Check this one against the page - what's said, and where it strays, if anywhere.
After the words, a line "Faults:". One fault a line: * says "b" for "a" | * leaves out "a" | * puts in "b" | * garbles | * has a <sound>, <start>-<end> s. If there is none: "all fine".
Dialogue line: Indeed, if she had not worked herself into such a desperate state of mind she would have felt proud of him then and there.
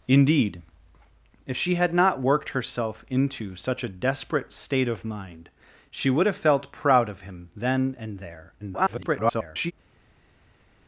Indeed, if she had not worked herself into such a desperate state of mind she would have felt proud of him then and there. [garbled]
Faults:
* garbles